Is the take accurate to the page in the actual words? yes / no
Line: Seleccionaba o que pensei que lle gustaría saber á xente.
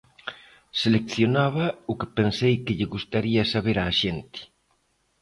yes